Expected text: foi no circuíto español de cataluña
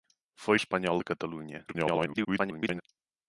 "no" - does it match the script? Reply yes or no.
no